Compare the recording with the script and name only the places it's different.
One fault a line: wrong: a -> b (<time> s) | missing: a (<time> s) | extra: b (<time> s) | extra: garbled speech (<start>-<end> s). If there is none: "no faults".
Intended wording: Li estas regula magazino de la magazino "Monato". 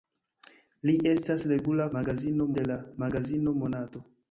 no faults